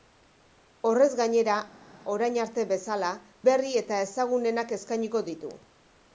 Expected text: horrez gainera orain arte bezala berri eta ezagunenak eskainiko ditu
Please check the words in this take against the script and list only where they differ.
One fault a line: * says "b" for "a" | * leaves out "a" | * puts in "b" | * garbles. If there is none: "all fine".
all fine